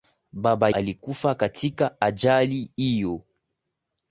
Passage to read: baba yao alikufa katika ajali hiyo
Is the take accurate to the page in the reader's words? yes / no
no